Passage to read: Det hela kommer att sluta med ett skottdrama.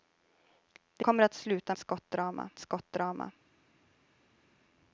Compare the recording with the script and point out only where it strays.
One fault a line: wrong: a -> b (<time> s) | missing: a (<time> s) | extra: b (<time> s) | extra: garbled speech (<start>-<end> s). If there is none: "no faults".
missing: hela (1.1 s)
wrong: med -> skottdrama (1.8 s)